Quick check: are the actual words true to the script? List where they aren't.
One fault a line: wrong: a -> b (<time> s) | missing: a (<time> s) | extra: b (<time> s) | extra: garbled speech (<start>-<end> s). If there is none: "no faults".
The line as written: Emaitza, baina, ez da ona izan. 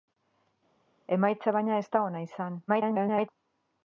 extra: garbled speech (2.7-3.3 s)